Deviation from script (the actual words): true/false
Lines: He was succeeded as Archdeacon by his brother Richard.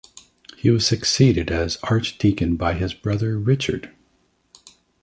false